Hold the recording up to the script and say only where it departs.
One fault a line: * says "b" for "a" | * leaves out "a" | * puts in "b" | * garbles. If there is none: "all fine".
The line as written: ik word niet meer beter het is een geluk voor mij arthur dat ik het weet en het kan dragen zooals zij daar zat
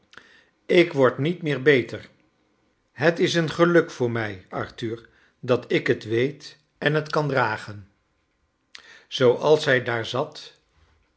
all fine